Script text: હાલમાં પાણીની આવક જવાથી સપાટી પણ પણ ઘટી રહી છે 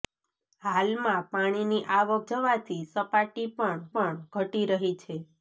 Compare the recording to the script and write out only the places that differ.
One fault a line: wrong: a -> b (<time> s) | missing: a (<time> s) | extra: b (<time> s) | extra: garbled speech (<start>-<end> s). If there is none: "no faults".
no faults